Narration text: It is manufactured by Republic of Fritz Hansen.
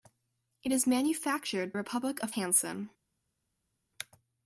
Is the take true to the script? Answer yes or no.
no